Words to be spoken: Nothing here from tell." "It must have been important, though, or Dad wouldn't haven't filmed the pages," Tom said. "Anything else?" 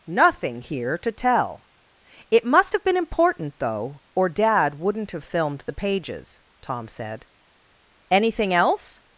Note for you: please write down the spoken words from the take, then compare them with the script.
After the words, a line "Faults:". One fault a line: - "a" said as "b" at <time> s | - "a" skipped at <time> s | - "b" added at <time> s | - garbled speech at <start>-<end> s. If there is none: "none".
Nothing here to tell." "It must have been important, though, or Dad wouldn't have filmed the pages," Tom said. "Anything else?"
Faults:
- "from" said as "to" at 1.0 s
- "haven't" said as "have" at 5.1 s